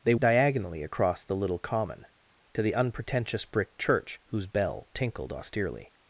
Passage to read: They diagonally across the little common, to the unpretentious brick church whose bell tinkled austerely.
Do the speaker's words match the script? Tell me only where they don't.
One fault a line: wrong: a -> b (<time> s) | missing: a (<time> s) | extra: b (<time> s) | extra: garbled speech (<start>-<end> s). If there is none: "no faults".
no faults